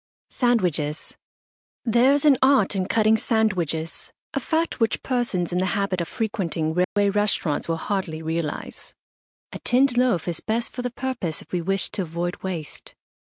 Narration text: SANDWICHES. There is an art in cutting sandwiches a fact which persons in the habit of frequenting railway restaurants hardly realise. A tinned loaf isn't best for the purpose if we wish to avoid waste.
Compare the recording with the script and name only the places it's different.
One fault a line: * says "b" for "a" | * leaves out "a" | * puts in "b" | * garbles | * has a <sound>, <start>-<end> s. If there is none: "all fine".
* has a dropout, 6.8-7.0 s
* puts in "will"
* says "is" for "isn't"